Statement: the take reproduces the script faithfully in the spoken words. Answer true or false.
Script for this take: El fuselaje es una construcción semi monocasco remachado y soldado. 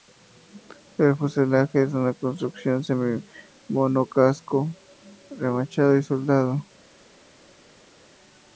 true